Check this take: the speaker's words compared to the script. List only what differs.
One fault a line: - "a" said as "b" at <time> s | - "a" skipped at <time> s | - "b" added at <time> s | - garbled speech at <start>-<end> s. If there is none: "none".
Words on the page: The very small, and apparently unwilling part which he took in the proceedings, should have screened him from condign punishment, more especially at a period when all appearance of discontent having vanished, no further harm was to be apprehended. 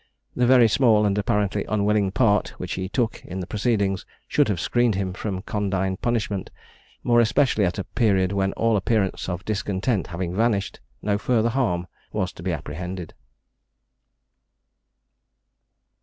none